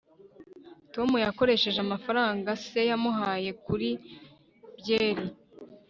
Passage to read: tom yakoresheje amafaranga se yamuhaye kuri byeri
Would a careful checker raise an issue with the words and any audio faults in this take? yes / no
no